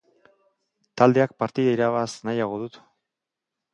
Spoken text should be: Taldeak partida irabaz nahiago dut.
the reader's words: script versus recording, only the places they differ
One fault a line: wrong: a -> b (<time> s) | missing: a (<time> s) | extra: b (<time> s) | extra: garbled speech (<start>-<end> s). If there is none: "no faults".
no faults